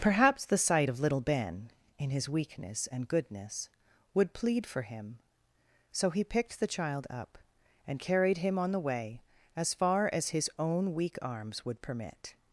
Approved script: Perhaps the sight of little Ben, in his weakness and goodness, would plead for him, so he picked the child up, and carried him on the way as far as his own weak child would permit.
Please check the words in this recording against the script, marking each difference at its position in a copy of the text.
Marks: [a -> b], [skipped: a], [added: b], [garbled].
Perhaps the sight of little Ben, in his weakness and goodness, would plead for him, so he picked the child up, and carried him on the way as far as his own weak [child -> arms] would permit.